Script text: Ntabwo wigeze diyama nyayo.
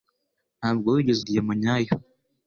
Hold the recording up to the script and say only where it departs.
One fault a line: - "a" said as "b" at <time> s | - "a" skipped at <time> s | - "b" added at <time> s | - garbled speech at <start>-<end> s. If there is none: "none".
none